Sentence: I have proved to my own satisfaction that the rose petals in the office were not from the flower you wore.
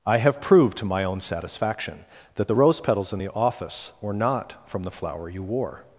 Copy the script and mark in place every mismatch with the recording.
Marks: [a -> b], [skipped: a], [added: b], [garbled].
I have proved to my own satisfaction that the rose petals in the office were not from the flower you wore.